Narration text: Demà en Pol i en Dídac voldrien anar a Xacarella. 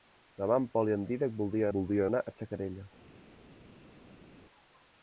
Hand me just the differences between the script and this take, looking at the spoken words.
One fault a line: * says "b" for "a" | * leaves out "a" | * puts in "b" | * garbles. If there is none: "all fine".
* puts in "voldrien"